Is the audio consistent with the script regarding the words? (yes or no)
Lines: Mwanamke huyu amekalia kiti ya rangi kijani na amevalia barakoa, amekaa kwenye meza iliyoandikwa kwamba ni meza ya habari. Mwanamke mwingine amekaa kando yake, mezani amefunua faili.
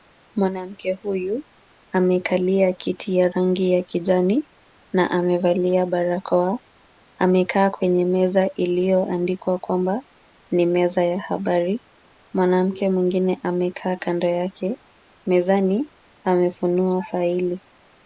no